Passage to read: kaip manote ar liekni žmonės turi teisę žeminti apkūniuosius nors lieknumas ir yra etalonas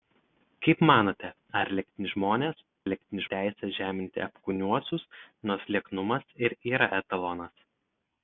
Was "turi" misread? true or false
true